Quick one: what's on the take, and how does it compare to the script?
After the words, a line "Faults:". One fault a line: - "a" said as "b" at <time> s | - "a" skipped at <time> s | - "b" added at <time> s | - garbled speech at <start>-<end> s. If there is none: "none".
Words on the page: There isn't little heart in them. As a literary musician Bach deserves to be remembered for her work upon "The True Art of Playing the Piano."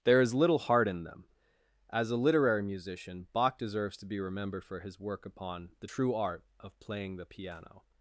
There is little heart in them. As a literary musician Bach deserves to be remembered for his work upon "The True Art of Playing the Piano."
Faults:
- "isn't" said as "is" at 0.2 s
- "her" said as "his" at 4.8 s